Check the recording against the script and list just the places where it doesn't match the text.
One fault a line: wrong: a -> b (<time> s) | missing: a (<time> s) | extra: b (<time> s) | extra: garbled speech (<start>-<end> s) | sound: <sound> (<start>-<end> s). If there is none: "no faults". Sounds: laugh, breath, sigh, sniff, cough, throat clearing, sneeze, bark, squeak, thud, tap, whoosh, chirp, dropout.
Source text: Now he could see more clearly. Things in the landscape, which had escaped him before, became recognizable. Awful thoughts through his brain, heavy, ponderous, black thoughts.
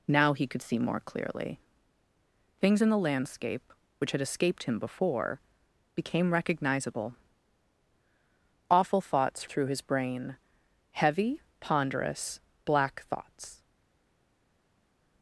no faults